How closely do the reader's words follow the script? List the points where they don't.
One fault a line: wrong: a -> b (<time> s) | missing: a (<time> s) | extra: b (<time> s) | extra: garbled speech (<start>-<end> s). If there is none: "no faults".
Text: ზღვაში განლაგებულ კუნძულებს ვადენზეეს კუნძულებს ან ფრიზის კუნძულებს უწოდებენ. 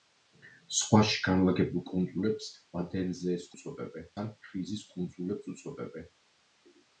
wrong: კუნძულებს -> უწოდებენ (3.6 s)